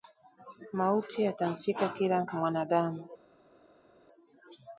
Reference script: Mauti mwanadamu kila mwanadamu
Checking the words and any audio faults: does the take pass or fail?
fail